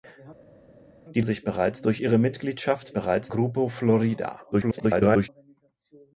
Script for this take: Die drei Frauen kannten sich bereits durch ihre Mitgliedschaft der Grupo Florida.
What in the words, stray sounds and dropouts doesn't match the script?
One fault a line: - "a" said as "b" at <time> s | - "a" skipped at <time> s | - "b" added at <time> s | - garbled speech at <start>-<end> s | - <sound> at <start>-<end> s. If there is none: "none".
- "drei Frauen kannten" skipped at 1.2 s
- "der" said as "bereits" at 2.9 s
- garbled speech at 4.5-5.3 s